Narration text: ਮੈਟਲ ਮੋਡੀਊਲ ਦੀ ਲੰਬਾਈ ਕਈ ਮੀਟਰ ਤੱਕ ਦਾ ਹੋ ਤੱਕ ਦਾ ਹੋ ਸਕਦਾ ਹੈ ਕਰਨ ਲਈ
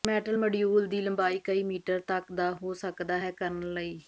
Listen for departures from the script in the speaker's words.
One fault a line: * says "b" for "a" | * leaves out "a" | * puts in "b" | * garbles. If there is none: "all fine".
* leaves out "ਤੱਕ ਦਾ ਹੋ"